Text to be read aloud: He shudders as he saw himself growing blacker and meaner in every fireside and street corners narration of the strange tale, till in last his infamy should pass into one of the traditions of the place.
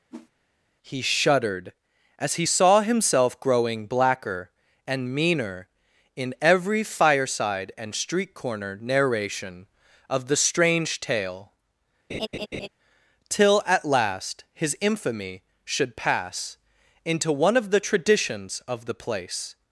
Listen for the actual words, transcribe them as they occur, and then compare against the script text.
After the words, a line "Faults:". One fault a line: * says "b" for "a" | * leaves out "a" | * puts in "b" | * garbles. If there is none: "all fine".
He shuddered as he saw himself growing blacker and meaner in every fireside and street corner narration of the strange tale, till at last his infamy should pass into one of the traditions of the place.
Faults:
* says "shuddered" for "shudders"
* says "corner" for "corners"
* says "at" for "in"